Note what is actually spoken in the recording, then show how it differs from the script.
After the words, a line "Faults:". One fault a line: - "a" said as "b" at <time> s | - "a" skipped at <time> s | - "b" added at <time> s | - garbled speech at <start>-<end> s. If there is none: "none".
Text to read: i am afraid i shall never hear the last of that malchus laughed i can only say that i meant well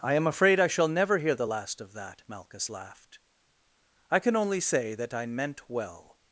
i am afraid i shall never hear the last of that malchus laughed i can only say that i meant well
Faults:
none